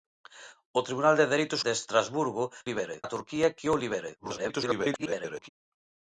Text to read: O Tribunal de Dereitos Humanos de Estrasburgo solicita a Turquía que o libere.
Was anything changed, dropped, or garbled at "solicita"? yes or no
yes